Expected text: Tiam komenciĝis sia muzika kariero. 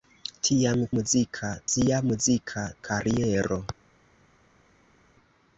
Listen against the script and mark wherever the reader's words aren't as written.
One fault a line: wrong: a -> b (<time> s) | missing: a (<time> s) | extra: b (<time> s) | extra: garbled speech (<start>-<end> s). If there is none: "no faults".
wrong: komenciĝis -> muzika (1.0 s)